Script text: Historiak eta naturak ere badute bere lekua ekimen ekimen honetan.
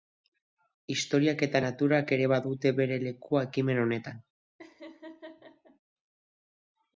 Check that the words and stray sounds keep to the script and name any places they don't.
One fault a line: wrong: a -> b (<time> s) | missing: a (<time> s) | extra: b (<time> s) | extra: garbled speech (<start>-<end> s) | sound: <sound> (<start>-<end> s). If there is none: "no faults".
missing: ekimen (3.8 s)
sound: laugh (4.6-5.8 s)